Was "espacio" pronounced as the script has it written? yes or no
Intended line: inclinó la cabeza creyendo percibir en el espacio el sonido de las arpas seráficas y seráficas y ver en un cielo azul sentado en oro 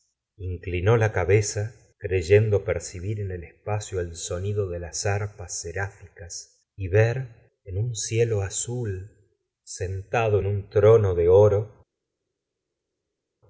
yes